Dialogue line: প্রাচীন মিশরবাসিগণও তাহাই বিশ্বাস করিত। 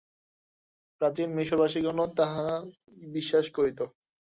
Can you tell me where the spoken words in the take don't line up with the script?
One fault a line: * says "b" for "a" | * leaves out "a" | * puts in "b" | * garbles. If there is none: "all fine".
all fine